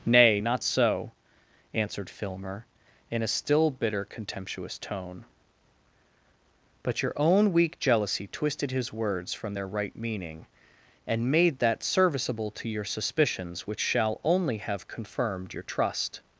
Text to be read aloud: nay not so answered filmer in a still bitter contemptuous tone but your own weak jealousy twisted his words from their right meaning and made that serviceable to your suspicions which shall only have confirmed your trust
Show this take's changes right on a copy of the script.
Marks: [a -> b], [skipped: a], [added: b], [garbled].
nay not so answered filmer in a still bitter contemptuous tone but your own weak jealousy twisted his words from their right meaning and made that serviceable to your suspicions which shall only have confirmed your trust